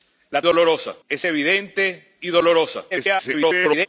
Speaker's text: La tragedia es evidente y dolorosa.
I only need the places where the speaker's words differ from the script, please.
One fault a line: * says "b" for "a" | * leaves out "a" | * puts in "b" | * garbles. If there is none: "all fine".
* says "dolorosa" for "tragedia"
* garbles